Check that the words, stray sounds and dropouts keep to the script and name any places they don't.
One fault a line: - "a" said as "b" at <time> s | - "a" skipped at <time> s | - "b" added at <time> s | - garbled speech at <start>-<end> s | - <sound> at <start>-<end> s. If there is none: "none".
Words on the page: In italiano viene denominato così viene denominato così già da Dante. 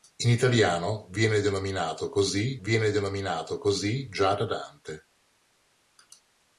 none